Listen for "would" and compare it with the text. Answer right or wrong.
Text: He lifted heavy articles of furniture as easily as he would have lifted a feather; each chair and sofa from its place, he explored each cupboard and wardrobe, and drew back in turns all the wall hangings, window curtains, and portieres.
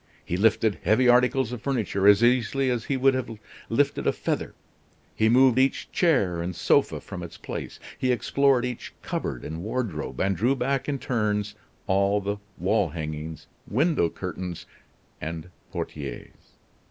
right